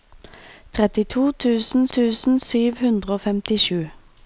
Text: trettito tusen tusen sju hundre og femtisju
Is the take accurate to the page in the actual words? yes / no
yes